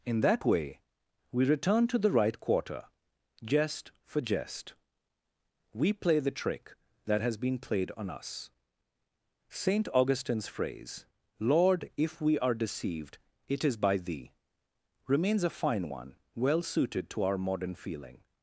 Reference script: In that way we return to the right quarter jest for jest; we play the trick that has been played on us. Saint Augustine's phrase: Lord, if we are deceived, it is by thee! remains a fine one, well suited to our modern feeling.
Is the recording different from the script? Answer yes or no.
no